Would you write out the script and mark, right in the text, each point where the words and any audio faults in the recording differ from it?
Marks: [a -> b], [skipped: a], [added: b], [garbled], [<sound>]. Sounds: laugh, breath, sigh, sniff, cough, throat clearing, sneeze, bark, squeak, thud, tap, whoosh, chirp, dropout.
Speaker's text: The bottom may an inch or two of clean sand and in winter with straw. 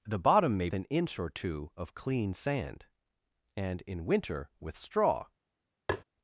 The bottom may an inch or two of clean sand and in winter with straw. [tap]